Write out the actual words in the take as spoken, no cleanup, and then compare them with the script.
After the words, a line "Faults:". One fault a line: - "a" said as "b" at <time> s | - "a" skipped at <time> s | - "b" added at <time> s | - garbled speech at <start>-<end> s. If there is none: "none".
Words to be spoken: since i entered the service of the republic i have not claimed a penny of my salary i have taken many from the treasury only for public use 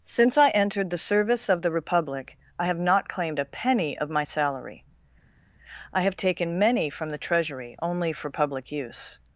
since i entered the service of the republic i have not claimed a penny of my salary i have taken many from the treasury only for public use
Faults:
none